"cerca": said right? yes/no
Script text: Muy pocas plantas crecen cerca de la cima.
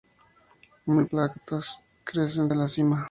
no